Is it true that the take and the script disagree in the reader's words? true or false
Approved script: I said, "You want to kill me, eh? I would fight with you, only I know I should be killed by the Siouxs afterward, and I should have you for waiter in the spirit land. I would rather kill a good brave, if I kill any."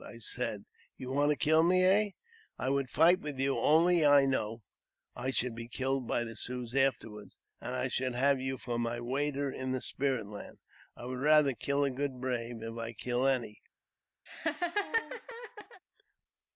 true